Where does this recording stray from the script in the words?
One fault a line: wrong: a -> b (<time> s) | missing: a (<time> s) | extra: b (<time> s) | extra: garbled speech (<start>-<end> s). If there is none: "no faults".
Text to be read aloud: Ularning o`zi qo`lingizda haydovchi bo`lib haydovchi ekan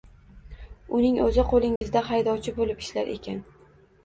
wrong: Ularning -> Uning (1.0 s)
wrong: haydovchi -> ishlar (2.9 s)